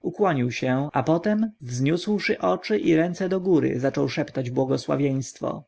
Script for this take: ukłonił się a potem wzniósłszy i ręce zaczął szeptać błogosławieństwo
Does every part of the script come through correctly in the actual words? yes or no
no